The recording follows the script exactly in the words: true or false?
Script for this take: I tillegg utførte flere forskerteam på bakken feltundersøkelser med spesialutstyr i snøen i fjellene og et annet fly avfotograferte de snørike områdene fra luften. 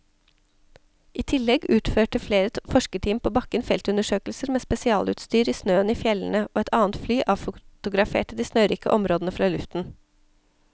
true